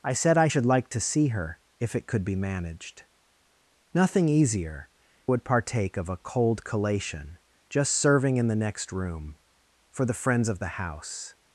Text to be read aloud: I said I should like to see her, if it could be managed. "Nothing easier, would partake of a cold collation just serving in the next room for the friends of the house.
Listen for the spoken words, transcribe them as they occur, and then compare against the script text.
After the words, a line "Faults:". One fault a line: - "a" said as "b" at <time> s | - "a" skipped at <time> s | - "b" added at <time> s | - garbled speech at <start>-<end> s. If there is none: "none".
I said I should like to see her, if it could be managed. "Nothing easier, would partake of a cold collation just serving in the next room for the friends of the house.
Faults:
none